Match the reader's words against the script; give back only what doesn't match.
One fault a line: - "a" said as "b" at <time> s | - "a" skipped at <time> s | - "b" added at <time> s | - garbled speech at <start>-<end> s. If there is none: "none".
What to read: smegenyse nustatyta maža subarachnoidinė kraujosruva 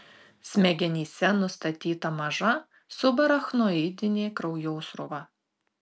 none